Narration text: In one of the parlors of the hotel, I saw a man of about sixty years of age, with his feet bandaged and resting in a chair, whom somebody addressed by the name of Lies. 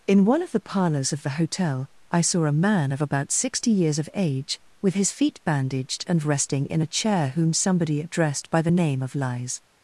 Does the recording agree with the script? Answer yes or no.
yes